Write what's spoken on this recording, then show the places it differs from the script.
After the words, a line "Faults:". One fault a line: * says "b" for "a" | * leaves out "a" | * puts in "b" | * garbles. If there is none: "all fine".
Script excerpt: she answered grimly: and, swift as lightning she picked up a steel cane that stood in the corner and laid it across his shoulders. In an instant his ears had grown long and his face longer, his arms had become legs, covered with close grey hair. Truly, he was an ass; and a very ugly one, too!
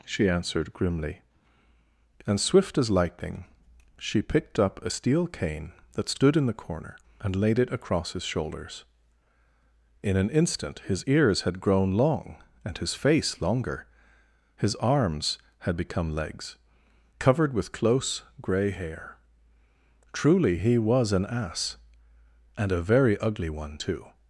she answered grimly: and, swift as lightning she picked up a steel cane that stood in the corner and laid it across his shoulders. In an instant his ears had grown long and his face longer, his arms had become legs, covered with close grey hair. Truly, he was an ass; and a very ugly one, too!
Faults:
all fine